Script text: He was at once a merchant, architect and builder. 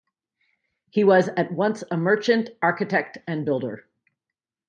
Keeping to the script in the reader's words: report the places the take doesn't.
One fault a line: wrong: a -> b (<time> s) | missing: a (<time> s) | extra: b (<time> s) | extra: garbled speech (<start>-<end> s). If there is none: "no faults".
no faults